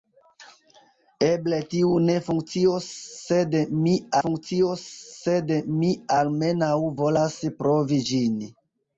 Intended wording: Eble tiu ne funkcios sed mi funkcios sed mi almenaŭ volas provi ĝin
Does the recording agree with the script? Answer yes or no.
yes